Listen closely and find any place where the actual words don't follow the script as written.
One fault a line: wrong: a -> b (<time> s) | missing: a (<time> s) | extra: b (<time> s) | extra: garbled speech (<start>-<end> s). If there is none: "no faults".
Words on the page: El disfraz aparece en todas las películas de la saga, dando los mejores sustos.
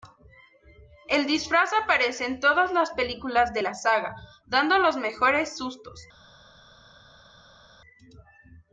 no faults